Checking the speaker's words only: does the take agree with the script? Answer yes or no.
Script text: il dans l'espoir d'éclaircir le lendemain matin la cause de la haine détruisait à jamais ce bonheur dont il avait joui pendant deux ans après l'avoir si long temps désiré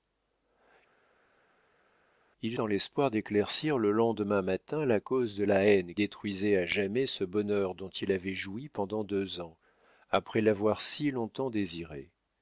yes